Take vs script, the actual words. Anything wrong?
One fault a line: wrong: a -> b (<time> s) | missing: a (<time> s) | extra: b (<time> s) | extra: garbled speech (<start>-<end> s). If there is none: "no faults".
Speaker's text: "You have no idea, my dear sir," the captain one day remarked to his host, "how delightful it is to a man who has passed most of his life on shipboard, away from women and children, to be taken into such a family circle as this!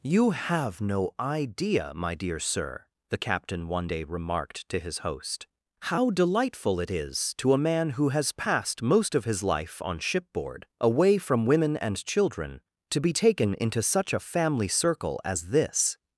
no faults